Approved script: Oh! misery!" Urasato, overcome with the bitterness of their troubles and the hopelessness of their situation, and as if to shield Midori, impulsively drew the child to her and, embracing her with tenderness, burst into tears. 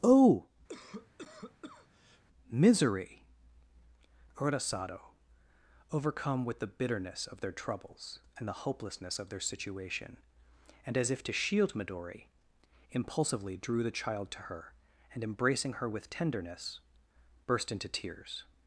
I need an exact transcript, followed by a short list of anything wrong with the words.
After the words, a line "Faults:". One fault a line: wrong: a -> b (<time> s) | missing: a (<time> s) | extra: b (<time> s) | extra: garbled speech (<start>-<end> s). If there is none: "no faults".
Oh! misery!" Urasato, overcome with the bitterness of their troubles and the hopelessness of their situation, and as if to shield Midori, impulsively drew the child to her and, embracing her with tenderness, burst into tears.
Faults:
no faults